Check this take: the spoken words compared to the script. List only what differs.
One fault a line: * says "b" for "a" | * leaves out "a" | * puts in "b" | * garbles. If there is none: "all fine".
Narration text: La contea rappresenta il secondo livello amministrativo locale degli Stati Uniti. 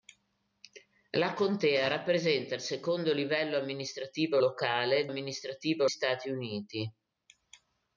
* says "amministrativo" for "degli"